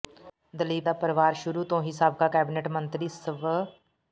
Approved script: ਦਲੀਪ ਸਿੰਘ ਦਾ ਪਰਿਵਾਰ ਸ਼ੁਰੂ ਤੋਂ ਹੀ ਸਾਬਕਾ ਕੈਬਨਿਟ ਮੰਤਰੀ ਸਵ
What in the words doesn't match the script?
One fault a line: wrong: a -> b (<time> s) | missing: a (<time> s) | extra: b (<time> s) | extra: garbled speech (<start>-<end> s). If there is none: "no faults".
missing: ਸਿੰਘ (0.8 s)